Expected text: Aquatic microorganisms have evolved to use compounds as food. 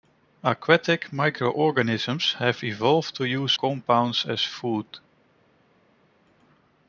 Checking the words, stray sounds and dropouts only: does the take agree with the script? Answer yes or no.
yes